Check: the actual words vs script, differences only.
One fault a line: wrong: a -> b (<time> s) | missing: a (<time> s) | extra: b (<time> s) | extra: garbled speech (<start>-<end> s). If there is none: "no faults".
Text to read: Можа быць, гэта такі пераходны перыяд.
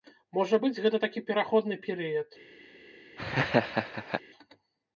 no faults